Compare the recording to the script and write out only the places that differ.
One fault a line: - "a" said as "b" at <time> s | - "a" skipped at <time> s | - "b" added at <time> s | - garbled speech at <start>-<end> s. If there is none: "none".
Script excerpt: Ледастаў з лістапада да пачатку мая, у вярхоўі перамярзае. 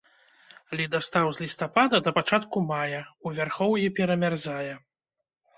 none